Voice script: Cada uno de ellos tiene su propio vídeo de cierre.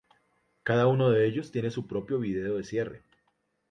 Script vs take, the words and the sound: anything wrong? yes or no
no